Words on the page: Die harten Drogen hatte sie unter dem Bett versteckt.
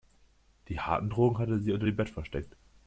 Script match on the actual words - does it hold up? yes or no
yes